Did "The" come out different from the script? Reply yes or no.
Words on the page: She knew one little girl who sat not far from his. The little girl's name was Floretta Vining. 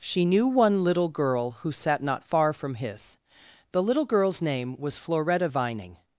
no